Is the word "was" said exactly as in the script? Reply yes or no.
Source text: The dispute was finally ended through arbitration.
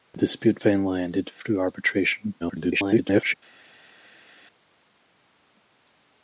no